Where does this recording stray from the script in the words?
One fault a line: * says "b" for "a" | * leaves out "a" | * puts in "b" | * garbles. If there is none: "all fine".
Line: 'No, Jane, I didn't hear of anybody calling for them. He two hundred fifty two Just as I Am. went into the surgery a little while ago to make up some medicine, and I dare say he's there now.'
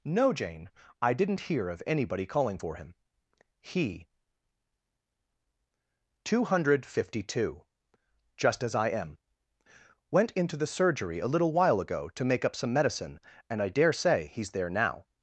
* says "him" for "them"